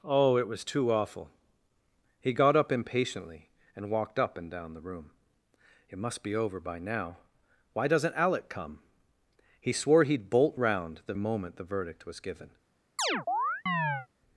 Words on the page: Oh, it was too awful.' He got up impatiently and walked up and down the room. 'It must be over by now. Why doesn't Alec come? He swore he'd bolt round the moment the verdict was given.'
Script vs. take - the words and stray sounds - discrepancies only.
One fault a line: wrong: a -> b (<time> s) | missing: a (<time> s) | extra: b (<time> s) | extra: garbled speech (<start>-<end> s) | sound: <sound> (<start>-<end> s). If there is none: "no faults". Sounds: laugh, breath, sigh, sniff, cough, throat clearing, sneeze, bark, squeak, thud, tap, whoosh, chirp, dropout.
sound: chirp (13.0-14.1 s)